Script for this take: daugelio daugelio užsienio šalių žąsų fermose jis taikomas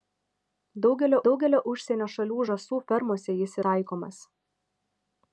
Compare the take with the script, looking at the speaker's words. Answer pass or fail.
pass